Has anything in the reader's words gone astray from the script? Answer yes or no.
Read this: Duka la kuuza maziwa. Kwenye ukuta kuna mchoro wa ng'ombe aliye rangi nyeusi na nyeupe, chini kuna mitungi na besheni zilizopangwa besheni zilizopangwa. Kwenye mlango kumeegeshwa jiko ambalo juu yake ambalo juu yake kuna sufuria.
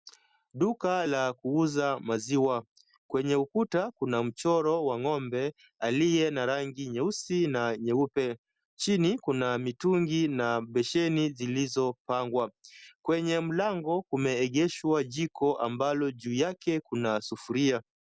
yes